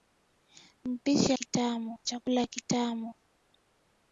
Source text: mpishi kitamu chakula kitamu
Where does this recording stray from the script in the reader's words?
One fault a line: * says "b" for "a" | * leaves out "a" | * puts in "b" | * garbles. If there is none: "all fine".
all fine